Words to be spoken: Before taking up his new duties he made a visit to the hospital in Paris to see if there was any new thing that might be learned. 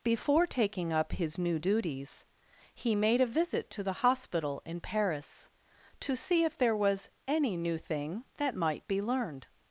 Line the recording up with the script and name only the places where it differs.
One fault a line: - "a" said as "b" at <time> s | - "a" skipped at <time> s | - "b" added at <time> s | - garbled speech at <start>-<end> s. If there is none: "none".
none